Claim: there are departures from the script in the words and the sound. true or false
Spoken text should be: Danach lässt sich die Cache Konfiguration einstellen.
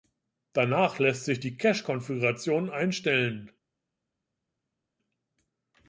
false